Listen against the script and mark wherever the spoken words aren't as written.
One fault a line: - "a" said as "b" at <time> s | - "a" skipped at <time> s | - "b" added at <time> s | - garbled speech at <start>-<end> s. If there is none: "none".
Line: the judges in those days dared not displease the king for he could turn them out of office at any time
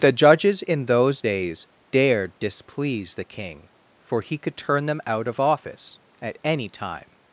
- "not" skipped at 2.4 s